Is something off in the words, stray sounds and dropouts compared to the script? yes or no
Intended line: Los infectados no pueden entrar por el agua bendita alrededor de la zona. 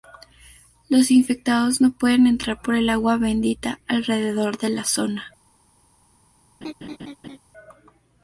yes